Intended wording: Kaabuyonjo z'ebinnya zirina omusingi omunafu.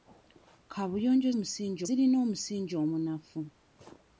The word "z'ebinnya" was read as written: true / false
false